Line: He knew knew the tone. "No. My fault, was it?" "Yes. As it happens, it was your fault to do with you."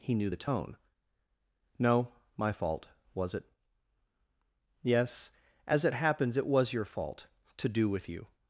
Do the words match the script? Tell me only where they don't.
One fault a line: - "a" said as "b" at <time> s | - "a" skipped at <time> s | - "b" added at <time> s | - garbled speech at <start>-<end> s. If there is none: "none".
- "knew" skipped at 0.3 s